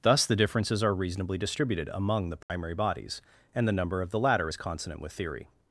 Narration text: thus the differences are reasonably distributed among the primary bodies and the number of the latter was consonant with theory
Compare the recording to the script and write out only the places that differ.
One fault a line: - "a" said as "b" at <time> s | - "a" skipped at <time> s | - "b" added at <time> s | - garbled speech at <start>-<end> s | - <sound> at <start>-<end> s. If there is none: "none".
- dropout at 2.4-2.5 s
- "was" said as "is" at 4.5 s